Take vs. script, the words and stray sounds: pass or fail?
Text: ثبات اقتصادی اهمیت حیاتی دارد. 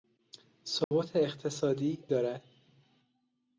fail